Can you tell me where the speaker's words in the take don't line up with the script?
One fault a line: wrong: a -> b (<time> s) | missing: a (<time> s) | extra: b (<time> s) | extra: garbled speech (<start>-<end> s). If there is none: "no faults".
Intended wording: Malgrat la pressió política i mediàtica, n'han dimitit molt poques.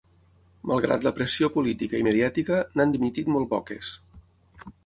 no faults